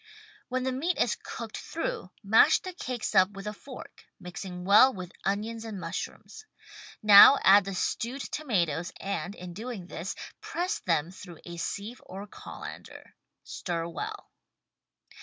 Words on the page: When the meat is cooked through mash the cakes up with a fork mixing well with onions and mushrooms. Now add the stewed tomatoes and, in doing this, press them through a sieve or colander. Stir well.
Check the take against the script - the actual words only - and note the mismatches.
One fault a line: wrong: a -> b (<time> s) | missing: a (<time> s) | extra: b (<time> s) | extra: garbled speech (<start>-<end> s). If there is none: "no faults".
no faults